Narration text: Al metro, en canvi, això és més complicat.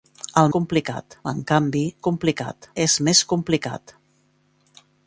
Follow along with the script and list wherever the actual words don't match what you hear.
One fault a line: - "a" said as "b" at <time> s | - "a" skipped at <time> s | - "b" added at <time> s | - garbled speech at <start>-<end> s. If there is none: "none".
- "metro" said as "complicat" at 0.6 s
- "això" said as "complicat" at 2.1 s